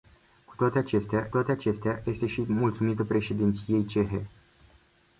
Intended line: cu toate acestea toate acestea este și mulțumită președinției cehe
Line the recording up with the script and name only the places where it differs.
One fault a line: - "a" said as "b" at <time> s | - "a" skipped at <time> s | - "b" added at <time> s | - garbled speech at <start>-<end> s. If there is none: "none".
none